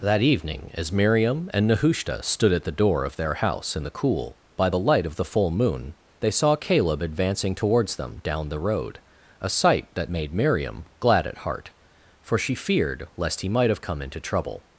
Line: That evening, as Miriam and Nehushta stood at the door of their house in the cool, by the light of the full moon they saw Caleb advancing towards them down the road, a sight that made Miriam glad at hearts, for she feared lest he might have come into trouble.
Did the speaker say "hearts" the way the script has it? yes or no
no